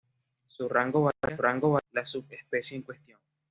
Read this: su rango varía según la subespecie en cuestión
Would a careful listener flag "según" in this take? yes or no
yes